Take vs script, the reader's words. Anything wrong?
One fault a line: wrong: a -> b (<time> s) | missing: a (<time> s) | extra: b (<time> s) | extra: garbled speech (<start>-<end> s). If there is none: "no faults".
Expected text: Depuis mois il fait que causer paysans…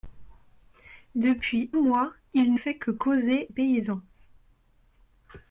no faults